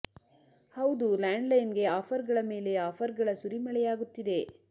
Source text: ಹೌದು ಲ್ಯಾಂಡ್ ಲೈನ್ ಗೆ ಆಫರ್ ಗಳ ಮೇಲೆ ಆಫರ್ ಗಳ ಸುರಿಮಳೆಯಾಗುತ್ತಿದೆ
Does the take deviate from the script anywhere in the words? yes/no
no